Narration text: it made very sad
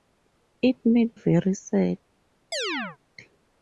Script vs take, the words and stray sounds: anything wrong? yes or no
yes